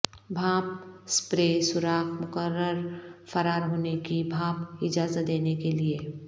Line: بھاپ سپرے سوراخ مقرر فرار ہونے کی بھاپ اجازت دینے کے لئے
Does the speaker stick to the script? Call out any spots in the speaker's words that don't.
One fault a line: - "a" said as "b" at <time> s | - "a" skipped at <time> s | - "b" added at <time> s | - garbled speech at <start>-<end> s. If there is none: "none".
none